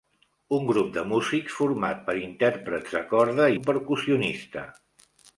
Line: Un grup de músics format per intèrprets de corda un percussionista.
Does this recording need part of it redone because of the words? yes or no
no